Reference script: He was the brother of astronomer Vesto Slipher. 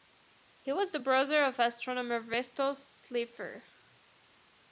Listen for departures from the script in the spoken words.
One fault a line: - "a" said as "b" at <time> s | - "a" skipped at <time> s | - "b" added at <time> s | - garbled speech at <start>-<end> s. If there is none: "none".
none